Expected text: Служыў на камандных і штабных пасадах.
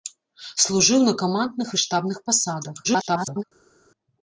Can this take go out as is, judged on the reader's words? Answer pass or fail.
fail